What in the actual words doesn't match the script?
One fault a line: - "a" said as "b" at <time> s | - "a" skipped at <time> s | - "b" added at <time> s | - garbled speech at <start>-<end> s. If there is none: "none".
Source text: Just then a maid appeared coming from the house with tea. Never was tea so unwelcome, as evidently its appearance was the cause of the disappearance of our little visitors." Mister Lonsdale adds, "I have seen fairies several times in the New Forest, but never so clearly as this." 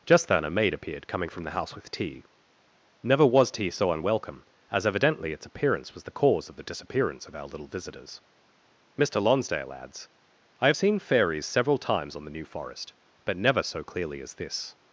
- "in" said as "on" at 12.2 s